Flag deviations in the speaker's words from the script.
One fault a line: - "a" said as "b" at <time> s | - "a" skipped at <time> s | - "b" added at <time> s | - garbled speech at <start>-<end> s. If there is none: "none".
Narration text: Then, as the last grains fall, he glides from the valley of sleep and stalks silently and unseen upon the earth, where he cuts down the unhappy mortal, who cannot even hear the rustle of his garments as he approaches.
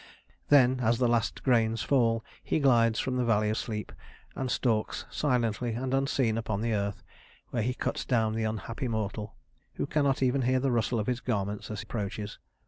- "of" skipped at 3.5 s
- "he" skipped at 11.8 s